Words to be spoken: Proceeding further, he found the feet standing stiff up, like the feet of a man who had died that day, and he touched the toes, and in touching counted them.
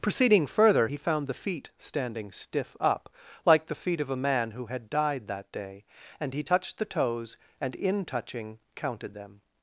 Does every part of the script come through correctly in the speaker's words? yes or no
yes